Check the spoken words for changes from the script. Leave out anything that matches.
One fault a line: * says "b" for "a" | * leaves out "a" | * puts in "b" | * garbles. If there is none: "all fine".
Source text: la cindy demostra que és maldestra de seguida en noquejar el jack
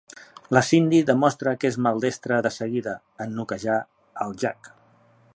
all fine